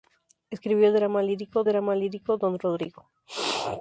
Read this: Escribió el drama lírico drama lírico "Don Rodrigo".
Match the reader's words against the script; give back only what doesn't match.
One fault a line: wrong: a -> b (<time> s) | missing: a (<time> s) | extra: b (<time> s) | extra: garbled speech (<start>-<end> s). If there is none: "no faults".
no faults